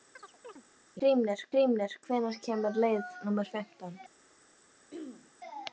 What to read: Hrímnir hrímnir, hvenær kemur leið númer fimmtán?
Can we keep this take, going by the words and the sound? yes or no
no